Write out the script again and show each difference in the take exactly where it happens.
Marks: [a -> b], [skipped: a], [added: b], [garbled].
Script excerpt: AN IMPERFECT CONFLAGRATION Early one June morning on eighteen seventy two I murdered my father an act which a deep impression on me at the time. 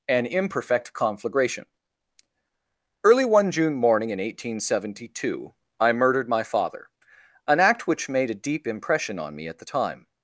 AN IMPERFECT CONFLAGRATION Early one June morning [on -> in] eighteen seventy two I murdered my father an act which [added: made] a deep impression on me at the time.